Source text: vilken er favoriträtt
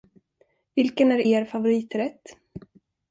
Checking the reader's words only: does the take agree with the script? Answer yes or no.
no